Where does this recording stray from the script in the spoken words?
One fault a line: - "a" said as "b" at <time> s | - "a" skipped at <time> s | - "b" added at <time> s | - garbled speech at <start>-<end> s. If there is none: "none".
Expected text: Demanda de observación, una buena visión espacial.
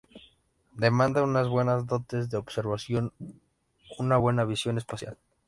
- "unas buenas dotes" added at 1.2 s